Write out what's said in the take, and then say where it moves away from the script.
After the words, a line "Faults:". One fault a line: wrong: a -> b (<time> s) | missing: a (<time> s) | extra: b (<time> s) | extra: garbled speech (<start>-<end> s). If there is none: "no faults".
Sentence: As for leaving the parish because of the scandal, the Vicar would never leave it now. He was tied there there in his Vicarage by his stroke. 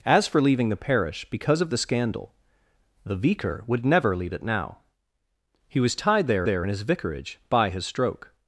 As for leaving the parish because of the scandal, the Vicar would never leave it now. He was tied there there in his Vicarage by his stroke.
Faults:
no faults